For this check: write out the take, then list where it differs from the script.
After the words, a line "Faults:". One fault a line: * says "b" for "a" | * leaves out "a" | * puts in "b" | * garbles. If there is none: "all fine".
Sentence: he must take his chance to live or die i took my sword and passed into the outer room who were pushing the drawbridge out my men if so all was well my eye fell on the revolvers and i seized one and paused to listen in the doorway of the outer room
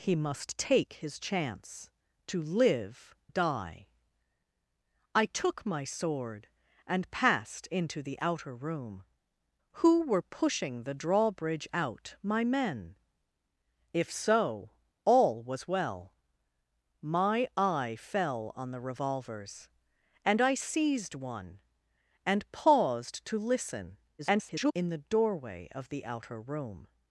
he must take his chance to live die i took my sword and passed into the outer room who were pushing the drawbridge out my men if so all was well my eye fell on the revolvers and i seized one and paused to listen [garbled] in the doorway of the outer room
Faults:
* leaves out "or"
* garbles